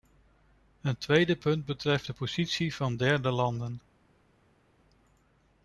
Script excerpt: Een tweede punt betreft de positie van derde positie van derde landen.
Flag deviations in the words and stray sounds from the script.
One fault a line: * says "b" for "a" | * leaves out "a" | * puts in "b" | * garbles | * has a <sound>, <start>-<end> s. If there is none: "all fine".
* leaves out "positie van derde"